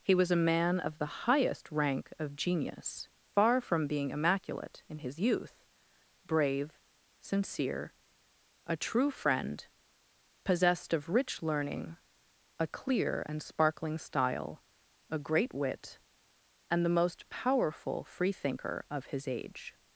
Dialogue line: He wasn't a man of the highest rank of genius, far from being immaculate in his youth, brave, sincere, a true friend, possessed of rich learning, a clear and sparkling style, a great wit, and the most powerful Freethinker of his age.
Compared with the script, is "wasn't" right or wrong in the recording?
wrong